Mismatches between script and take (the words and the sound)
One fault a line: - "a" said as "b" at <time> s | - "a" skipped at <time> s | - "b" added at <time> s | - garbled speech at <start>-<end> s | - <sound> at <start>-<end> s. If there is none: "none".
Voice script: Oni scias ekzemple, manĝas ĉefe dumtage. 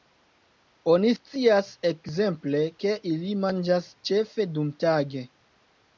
- "ke ili" added at 2.8 s